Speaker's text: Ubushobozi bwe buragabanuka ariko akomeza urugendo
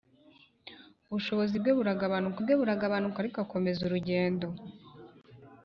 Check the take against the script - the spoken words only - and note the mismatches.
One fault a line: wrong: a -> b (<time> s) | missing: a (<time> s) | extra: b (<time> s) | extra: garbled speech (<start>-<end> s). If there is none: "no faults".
extra: bwe buragabanuka (2.4 s)